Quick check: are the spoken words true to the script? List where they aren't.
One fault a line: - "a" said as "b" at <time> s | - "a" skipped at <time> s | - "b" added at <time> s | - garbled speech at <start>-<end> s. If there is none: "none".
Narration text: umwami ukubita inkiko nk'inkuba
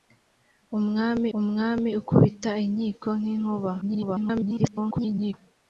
- "umwami" added at 1.4 s
- garbled speech at 3.8-5.3 s